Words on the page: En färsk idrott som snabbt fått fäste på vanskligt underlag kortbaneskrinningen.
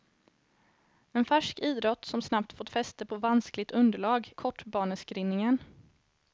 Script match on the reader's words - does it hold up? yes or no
yes